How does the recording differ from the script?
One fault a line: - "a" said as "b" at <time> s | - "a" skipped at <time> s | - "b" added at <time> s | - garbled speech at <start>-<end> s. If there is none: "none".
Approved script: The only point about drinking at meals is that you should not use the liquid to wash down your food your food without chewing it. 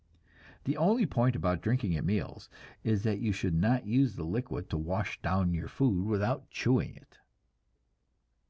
- "your food" skipped at 6.0 s